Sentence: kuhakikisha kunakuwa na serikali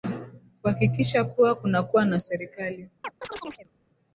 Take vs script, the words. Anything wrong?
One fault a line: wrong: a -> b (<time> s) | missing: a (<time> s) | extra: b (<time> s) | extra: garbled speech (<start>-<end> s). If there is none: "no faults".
extra: kuwa (1.2 s)